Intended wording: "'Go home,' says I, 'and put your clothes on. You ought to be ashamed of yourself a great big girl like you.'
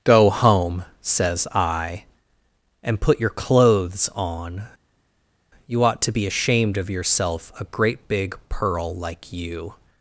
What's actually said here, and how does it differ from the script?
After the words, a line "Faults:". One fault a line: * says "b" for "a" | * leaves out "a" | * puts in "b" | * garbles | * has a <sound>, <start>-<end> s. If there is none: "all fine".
"'Go home,' says I, 'and put your clothes on. You ought to be ashamed of yourself a great big pearl like you.'
Faults:
* says "pearl" for "girl"